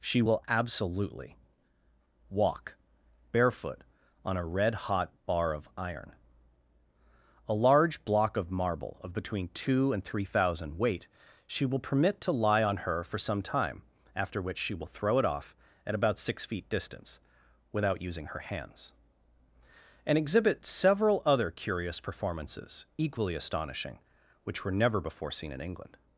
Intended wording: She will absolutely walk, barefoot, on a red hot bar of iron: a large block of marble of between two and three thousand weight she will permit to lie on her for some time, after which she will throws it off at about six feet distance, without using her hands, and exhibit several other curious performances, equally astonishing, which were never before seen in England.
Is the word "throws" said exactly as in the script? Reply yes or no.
no